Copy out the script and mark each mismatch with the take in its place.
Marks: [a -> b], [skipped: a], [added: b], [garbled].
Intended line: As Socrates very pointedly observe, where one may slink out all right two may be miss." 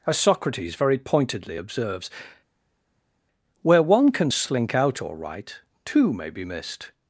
As Socrates very pointedly [observe, -> observes] where one [may -> can] slink out all right two may be [miss." -> missed]